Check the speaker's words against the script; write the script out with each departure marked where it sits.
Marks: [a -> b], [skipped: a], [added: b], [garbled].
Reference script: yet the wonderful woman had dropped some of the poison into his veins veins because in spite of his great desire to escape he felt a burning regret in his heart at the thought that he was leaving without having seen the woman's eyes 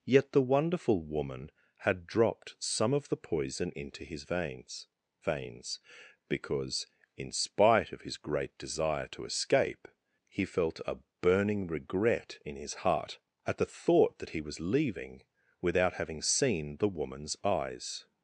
yet the wonderful woman had dropped some of the poison into his veins veins because in spite of his great desire to escape he felt a burning regret in his heart at the thought that he was leaving without having seen the woman's eyes